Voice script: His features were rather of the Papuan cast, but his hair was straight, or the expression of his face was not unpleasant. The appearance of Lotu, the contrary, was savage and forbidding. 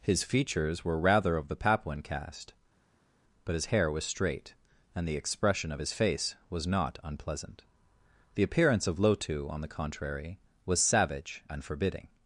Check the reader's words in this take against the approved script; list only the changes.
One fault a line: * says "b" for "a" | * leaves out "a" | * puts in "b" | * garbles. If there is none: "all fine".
* says "and" for "or"
* puts in "on"